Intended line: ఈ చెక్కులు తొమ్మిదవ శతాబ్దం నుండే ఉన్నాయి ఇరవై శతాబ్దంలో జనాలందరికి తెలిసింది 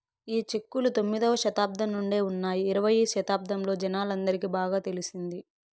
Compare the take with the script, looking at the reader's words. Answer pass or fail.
fail